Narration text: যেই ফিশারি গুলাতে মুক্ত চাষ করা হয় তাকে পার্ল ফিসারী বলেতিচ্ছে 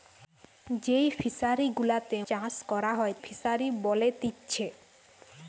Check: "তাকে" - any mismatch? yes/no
yes